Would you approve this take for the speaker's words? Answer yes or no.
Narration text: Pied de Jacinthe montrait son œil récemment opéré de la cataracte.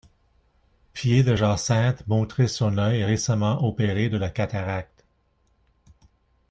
yes